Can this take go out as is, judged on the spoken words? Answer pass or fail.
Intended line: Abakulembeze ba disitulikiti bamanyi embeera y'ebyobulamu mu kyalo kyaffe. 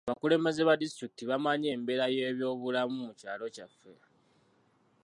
pass